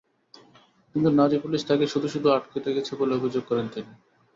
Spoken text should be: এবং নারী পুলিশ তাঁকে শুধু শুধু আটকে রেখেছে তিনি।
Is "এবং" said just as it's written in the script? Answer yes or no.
no